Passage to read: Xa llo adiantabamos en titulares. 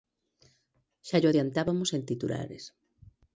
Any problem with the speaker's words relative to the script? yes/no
no